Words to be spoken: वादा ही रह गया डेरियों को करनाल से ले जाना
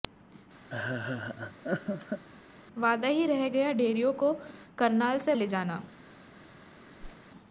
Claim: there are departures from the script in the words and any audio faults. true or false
true